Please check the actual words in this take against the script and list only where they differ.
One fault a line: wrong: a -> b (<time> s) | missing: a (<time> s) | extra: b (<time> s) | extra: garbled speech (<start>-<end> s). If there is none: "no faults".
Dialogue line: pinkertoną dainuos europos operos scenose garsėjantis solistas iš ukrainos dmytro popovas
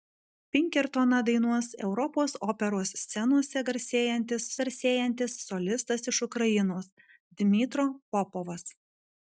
extra: garsėjantis (4.6 s)